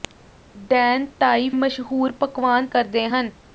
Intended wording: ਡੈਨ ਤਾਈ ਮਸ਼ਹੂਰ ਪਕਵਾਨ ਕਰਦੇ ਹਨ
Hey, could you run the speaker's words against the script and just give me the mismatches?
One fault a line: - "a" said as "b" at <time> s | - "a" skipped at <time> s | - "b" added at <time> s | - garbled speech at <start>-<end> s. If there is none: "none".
none